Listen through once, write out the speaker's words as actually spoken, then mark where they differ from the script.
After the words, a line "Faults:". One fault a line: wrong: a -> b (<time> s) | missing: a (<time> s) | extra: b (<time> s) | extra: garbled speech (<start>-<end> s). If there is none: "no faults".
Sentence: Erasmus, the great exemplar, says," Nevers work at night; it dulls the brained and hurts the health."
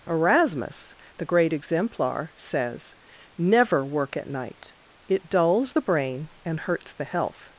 Erasmus, the great exemplar, says," Never work at night; it dulls the brain and hurts the health."
Faults:
wrong: Nevers -> Never (3.4 s)
wrong: brained -> brain (5.8 s)